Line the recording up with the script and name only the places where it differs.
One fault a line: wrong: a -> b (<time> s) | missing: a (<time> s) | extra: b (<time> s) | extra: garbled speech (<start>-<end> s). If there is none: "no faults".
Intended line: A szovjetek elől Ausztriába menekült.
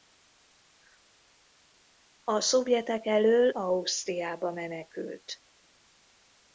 no faults